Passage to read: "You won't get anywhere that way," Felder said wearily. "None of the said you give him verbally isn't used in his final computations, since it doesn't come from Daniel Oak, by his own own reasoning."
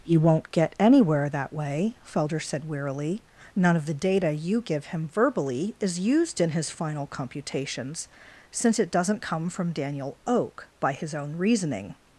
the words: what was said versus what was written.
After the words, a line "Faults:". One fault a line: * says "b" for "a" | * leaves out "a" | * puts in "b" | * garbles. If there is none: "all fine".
"You won't get anywhere that way," Felder said wearily. "None of the data you give him verbally is used in his final computations, since it doesn't come from Daniel Oak, by his own reasoning."
Faults:
* says "data" for "said"
* says "is" for "isn't"
* leaves out "own"